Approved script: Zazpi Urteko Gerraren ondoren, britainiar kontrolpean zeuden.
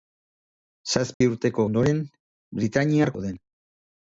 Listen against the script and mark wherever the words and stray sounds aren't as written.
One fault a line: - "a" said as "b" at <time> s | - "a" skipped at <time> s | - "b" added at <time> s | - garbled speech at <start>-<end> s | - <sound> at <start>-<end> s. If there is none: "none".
- dropout at 1.1-1.2 s
- "Gerraren" skipped at 1.6 s
- "kontrolpean" skipped at 3.1 s